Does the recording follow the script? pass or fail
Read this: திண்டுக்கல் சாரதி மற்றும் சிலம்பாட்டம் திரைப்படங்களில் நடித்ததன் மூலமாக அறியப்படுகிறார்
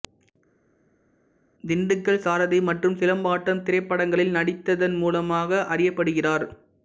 pass